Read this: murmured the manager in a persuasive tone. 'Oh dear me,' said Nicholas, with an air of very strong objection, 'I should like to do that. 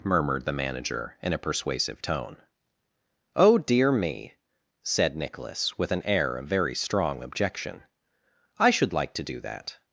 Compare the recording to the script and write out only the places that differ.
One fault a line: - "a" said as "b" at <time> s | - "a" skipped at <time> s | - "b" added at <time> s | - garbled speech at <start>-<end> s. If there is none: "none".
none